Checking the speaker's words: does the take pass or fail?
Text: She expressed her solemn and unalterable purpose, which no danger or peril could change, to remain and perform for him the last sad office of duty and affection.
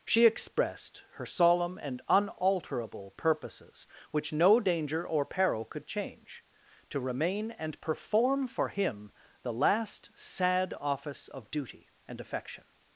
fail